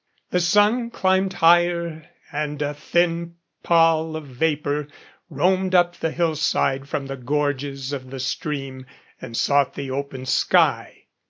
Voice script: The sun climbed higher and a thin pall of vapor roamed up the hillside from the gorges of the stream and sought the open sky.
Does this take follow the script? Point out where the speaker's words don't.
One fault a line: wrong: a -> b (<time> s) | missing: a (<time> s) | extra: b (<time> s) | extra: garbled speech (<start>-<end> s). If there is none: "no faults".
no faults